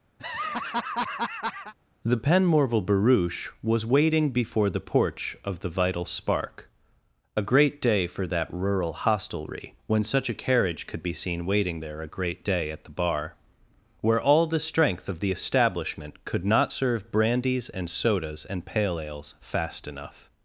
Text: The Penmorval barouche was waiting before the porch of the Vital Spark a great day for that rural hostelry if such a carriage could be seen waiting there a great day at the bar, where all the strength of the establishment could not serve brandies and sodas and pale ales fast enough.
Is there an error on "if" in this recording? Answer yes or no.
yes